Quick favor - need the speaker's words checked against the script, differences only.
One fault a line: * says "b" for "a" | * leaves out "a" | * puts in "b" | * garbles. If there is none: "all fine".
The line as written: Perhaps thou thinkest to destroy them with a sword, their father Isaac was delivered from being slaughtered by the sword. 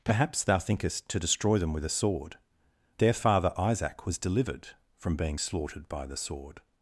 all fine